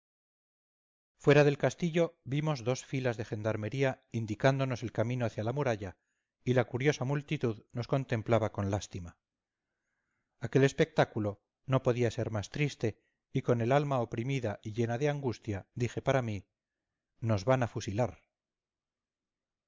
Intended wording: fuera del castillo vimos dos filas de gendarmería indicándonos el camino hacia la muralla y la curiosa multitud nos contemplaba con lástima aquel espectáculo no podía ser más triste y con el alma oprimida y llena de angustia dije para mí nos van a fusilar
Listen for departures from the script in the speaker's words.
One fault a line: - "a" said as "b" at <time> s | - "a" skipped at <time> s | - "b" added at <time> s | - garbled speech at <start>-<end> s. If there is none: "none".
none